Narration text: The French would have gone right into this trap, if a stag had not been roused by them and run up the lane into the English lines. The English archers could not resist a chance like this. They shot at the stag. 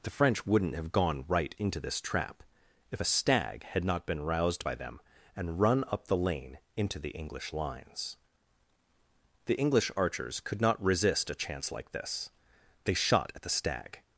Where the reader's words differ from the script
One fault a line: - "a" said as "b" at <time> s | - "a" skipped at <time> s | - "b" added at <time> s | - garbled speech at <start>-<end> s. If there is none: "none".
- "would" said as "wouldn't" at 0.5 s